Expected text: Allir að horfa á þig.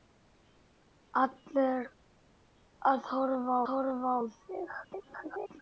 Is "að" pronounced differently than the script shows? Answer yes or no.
no